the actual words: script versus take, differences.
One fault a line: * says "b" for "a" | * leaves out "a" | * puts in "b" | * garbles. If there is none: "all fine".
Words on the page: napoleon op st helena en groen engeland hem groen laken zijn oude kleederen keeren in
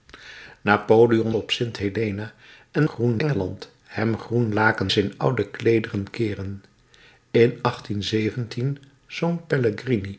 all fine